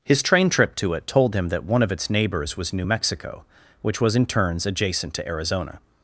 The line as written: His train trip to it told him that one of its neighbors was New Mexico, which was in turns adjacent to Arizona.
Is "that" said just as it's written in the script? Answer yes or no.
yes